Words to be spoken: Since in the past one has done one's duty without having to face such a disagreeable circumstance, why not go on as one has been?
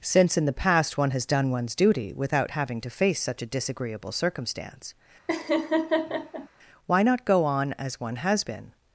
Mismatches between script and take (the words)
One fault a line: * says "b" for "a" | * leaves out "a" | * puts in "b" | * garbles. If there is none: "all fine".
all fine